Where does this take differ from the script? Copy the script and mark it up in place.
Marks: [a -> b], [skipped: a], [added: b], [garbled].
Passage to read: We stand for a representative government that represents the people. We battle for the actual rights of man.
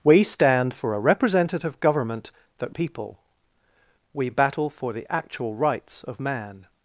We stand for a representative government that [skipped: represents the] people. We battle for the actual rights of man.